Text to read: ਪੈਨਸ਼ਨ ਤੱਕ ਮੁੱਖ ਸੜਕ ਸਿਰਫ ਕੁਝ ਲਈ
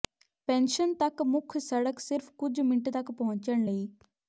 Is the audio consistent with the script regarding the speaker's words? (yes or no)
no